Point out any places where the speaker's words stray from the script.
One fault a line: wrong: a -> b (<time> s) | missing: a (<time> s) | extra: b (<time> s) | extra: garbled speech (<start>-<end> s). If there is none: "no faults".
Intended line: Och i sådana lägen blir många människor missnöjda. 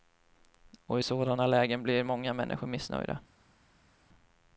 no faults